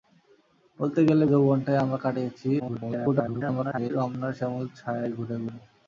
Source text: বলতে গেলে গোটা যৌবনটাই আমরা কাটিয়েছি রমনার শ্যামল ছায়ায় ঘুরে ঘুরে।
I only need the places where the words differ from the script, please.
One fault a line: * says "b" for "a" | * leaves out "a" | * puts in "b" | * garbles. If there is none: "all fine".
* leaves out "গোটা"
* garbles